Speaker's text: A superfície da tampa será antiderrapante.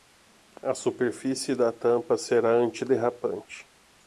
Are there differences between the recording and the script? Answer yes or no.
no